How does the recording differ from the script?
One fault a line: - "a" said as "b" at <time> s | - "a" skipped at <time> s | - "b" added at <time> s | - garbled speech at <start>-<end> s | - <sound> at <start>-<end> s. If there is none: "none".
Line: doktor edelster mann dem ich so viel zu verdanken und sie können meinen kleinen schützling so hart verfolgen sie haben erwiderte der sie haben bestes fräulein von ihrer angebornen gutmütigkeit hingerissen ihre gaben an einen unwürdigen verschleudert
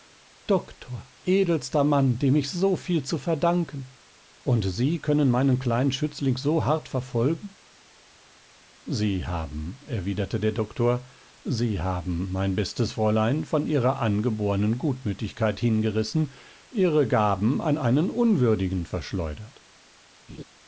- "doktor" added at 10.5 s
- "mein" added at 12.3 s
- laugh at 20.3-20.4 s